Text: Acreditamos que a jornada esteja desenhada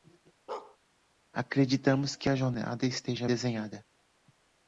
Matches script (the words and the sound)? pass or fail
fail